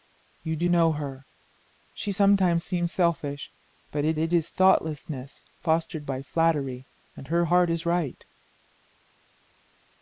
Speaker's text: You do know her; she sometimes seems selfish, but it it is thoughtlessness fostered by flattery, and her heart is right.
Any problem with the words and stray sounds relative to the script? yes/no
no